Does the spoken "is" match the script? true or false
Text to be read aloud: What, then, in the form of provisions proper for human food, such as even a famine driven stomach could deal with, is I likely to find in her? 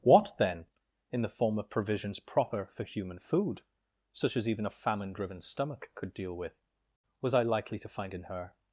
false